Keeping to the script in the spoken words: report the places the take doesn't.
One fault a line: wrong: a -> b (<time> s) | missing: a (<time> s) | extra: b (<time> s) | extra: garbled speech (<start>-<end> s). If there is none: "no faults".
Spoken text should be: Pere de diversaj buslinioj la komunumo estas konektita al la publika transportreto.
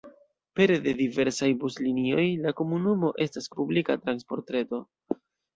missing: konektita al (3.5 s)